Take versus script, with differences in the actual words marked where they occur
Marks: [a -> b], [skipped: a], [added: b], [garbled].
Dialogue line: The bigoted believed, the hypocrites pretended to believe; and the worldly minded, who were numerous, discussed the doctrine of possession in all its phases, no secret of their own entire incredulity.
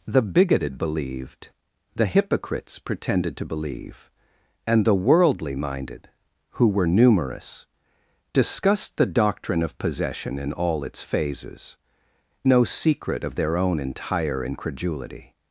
The bigoted believed, the hypocrites pretended to believe; and the worldly minded, who were numerous, discussed the doctrine of possession in all its phases, no secret of their own entire incredulity.